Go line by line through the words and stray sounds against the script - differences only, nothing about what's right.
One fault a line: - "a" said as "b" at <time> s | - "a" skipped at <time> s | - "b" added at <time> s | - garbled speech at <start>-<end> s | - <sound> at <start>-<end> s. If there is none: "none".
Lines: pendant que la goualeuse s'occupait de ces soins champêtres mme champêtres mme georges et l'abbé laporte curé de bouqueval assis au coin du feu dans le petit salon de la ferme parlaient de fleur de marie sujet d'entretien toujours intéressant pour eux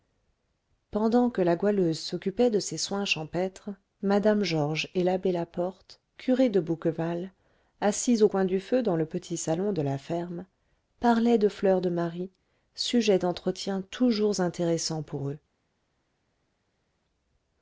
- "champêtres mme" skipped at 4.4 s